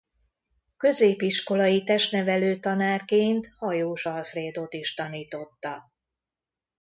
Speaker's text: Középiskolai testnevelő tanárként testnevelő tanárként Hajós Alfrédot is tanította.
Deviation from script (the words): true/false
true